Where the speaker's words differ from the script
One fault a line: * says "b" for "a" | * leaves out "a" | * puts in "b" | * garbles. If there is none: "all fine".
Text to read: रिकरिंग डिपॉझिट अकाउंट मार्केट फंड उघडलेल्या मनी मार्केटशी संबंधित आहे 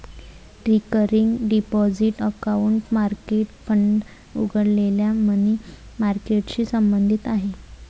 all fine